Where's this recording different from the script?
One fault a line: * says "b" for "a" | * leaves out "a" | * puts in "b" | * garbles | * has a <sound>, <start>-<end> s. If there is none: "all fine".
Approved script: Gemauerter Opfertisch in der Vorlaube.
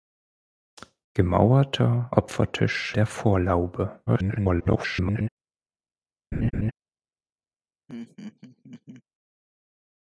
* leaves out "in"
* garbles
* has a laugh, 6.3-6.7 s
* has a laugh, 7.9-9.0 s